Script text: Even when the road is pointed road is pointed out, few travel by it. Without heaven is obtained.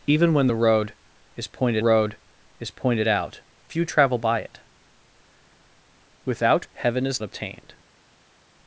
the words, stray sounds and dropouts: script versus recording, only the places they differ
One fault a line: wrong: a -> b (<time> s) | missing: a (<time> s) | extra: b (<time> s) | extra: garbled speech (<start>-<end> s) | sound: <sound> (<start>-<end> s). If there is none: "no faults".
no faults